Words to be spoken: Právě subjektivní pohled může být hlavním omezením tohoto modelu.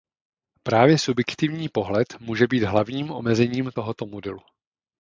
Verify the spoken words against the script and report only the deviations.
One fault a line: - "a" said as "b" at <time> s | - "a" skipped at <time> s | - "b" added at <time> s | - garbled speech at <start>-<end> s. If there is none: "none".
none